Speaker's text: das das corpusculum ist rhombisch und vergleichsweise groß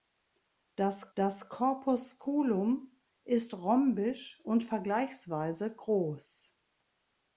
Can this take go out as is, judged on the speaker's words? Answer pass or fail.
pass